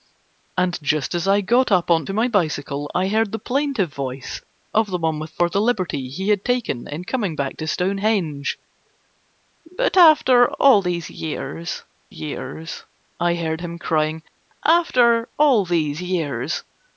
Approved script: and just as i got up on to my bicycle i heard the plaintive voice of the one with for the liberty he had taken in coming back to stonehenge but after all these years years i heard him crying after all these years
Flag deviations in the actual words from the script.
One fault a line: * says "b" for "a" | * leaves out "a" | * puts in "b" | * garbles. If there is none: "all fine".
all fine